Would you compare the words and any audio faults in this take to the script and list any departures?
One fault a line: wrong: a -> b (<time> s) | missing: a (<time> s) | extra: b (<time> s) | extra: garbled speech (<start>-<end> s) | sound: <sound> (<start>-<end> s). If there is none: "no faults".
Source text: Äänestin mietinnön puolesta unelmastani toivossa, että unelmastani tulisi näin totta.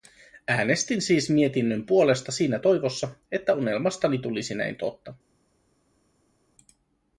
extra: siis (1.0 s)
wrong: unelmastani -> siinä (2.3 s)